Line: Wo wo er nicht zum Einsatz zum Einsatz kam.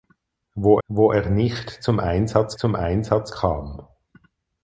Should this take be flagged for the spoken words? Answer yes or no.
no